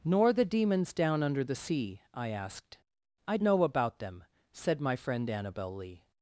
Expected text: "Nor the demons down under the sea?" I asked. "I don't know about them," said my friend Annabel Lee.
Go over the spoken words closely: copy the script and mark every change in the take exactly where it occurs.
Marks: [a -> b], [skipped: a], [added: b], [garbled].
"Nor the demons down under the sea?" I asked. "I [skipped: don't] know about them," said my friend Annabel Lee.